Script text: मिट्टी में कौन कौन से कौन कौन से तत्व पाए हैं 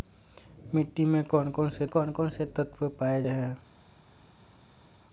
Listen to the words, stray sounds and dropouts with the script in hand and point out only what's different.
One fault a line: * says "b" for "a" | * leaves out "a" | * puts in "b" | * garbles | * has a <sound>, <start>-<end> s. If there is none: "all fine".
all fine